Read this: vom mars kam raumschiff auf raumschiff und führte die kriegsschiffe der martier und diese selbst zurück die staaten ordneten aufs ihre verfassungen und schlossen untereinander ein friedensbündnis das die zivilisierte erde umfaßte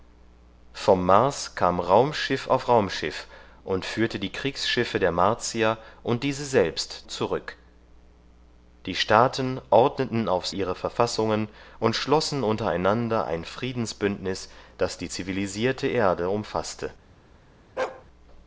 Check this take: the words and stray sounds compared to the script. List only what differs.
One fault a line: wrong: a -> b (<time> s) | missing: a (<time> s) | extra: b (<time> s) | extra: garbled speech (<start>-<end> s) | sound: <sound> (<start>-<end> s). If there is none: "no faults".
sound: bark (17.8-18.1 s)